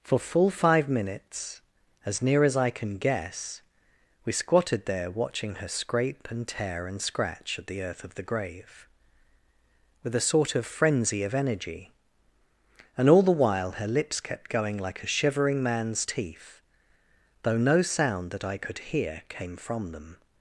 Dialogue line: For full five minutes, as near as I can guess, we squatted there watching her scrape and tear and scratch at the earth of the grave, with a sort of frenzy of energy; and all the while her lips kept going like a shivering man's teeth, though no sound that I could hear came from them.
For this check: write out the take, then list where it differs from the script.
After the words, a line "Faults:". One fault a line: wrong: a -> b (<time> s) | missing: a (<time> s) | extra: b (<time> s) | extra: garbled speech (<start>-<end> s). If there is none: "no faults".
For full five minutes, as near as I can guess, we squatted there watching her scrape and tear and scratch at the earth of the grave, with a sort of frenzy of energy; and all the while her lips kept going like a shivering man's teeth, though no sound that I could hear came from them.
Faults:
no faults